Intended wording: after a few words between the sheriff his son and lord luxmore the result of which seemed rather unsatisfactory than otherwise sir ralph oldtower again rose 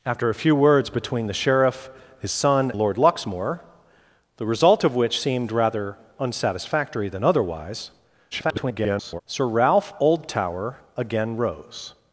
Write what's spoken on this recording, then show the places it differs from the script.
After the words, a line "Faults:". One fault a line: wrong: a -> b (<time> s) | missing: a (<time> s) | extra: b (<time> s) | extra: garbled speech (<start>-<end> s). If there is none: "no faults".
after a few words between the sheriff his son lord luxmore the result of which seemed rather unsatisfactory than otherwise [garbled] sir ralph oldtower again rose
Faults:
missing: and (2.7 s)
extra: garbled speech (8.3-9.2 s)